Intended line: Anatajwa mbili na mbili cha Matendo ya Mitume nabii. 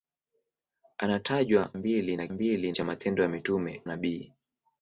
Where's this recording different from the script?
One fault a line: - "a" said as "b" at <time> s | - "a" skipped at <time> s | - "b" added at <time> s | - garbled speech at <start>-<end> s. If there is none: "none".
none